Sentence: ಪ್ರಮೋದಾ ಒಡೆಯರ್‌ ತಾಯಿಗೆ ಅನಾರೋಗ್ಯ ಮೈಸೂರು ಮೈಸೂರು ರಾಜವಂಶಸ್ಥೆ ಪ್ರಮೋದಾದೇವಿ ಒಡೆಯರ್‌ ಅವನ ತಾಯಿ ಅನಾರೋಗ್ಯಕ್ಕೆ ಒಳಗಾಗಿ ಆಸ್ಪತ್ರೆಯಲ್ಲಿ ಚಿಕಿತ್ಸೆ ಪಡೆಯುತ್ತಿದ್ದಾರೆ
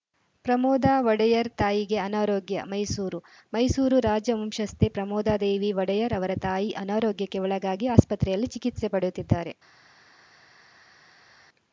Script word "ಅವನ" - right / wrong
wrong